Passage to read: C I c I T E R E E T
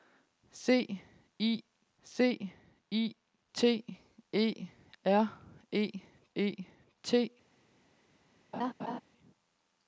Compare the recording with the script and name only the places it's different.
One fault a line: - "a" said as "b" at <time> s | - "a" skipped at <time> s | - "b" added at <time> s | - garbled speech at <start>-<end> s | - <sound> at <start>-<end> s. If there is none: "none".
- laugh at 8.5-9.0 s